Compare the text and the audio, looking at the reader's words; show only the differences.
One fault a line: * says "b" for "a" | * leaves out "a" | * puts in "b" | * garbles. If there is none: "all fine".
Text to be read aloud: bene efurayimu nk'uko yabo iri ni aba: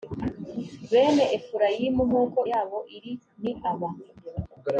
all fine